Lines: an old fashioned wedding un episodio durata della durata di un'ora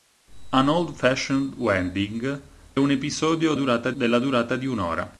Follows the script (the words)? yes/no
yes